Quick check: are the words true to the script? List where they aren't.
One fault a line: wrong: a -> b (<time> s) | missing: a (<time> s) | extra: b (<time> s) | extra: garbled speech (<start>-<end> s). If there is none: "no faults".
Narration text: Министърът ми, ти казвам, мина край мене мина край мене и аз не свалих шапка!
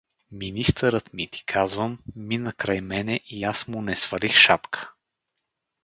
missing: мина край мене (3.2 s)
extra: му (3.7 s)